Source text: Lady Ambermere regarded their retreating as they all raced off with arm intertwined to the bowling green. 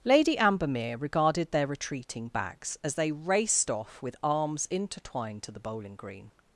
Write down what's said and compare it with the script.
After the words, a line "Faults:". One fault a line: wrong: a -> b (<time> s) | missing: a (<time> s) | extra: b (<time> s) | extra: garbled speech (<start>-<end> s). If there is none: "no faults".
Lady Ambermere regarded their retreating backs, as they raced off with arms intertwined to the bowling green.
Faults:
extra: backs (2.3 s)
missing: all (3.1 s)
wrong: arm -> arms (4.2 s)